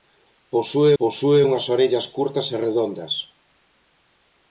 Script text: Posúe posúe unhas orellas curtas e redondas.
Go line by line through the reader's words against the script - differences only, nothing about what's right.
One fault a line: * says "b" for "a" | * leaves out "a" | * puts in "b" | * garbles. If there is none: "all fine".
all fine